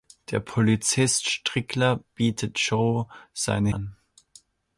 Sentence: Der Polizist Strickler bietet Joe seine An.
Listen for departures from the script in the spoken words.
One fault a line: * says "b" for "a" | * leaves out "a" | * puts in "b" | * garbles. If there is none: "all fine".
all fine